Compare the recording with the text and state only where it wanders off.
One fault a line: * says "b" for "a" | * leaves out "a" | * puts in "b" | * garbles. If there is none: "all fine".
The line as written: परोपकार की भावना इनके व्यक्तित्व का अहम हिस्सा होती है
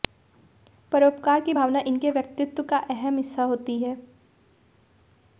all fine